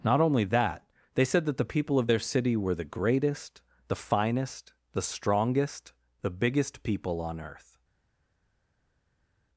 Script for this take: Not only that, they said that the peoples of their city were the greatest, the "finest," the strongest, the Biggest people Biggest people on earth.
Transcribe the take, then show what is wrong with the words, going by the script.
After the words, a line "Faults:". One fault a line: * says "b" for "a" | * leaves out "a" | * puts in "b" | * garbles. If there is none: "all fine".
Not only that, they said that the people of their city were the greatest, the "finest," the strongest, the Biggest people on earth.
Faults:
* says "people" for "peoples"
* leaves out "Biggest people"